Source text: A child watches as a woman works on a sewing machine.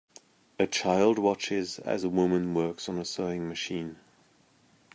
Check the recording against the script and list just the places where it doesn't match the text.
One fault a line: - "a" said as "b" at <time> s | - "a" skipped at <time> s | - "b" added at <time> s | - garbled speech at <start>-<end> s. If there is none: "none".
none